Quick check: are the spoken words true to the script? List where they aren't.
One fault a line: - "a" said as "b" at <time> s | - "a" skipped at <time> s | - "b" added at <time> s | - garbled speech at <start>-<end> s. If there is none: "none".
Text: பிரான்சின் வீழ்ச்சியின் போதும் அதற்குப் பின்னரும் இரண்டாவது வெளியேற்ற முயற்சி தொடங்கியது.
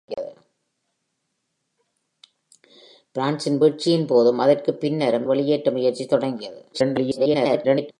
- "இரண்டாவது" skipped at 5.3 s
- garbled speech at 6.7-7.9 s